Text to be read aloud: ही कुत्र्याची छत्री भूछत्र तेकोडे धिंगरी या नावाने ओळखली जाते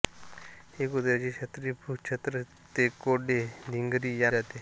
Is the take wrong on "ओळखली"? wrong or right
wrong